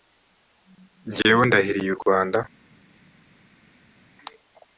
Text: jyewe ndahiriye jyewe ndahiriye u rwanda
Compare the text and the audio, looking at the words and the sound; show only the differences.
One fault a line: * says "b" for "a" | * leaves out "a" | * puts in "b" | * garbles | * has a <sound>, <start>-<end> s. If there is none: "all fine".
* leaves out "jyewe ndahiriye"